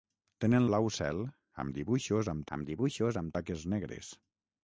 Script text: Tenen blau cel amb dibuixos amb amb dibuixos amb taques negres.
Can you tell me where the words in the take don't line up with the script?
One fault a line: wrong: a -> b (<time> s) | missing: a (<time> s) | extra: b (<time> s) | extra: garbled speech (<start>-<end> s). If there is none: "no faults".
no faults